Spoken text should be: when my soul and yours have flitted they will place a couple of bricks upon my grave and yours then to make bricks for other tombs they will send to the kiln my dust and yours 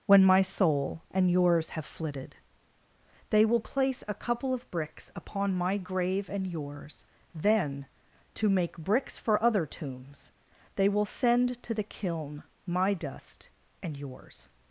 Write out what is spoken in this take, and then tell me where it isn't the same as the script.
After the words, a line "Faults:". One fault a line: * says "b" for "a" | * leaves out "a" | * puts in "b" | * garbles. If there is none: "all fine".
when my soul and yours have flitted they will place a couple of bricks upon my grave and yours then to make bricks for other tombs they will send to the kiln my dust and yours
Faults:
all fine